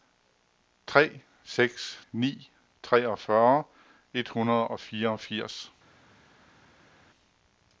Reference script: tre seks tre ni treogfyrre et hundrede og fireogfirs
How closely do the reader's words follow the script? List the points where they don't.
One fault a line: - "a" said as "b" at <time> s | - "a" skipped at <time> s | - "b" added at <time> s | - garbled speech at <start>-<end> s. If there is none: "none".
- "tre" skipped at 2.0 s